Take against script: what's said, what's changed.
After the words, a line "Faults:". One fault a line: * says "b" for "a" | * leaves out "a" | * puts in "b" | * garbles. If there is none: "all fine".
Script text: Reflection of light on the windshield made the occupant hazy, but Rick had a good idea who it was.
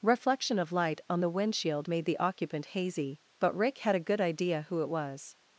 Reflection of light on the windshield made the occupant hazy, but Rick had a good idea who it was.
Faults:
all fine